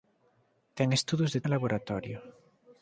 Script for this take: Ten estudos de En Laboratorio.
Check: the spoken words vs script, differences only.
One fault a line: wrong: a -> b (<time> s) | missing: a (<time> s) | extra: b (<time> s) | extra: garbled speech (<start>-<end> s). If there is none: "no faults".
no faults